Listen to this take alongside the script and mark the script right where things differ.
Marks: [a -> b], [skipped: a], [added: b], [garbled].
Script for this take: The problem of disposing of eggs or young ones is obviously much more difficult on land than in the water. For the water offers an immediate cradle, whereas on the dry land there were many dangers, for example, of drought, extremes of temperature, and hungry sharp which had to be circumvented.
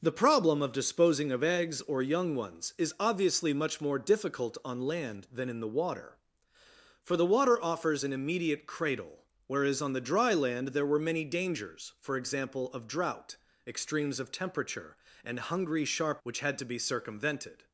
The problem of disposing of eggs or young ones is obviously much more difficult on land than in the water. For the water offers an immediate cradle, whereas on the dry land there were many dangers, for example, of drought, extremes of temperature, and hungry sharp which had to be circumvented.